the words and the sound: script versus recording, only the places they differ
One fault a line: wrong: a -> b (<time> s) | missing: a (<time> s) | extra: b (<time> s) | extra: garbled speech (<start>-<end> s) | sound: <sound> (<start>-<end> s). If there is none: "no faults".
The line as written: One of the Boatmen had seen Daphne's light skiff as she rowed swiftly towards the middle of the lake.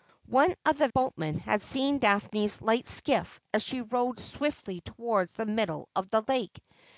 no faults